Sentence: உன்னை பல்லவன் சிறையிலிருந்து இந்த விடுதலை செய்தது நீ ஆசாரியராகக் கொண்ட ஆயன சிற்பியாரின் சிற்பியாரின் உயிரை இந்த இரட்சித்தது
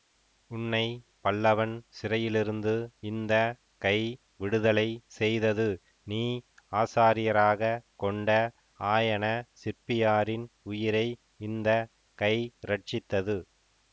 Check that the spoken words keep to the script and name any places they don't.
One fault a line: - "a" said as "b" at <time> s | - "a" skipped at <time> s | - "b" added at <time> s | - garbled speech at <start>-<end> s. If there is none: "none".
- "கை" added at 3.8 s
- "சிற்பியாரின்" skipped at 10.5 s
- "கை" added at 12.2 s